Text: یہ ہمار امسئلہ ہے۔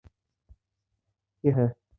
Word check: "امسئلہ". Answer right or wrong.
wrong